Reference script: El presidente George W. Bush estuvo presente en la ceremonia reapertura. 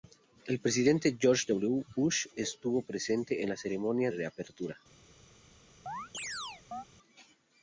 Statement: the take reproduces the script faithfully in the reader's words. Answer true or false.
true